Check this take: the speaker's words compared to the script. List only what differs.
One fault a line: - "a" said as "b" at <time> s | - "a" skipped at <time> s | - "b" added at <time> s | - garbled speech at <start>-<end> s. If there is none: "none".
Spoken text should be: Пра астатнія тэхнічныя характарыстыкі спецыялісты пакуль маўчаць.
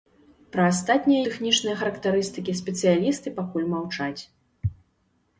none